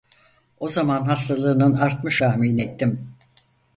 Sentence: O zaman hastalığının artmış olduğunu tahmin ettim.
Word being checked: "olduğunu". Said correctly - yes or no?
no